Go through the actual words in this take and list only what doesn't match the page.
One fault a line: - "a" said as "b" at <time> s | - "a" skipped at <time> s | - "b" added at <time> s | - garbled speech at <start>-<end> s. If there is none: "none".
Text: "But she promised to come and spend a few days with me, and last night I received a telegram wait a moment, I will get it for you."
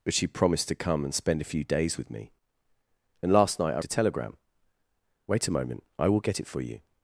- "received" skipped at 3.8 s